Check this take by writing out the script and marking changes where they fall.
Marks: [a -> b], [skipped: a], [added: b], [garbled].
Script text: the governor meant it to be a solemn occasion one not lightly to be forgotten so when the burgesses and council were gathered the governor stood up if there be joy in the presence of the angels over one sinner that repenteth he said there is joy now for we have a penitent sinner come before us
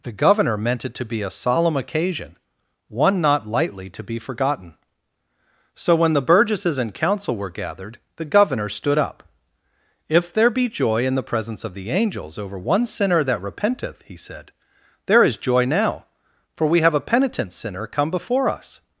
the governor meant it to be a solemn occasion one not lightly to be forgotten so when the burgesses and council were gathered the governor stood up if there be joy in the presence of the angels over one sinner that repenteth he said there is joy now for we have a penitent sinner come before us